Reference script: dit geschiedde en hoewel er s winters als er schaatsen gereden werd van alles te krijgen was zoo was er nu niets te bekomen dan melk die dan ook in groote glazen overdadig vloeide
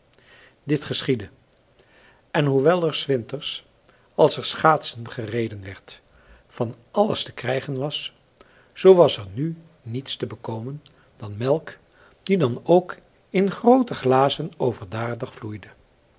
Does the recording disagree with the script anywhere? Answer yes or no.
no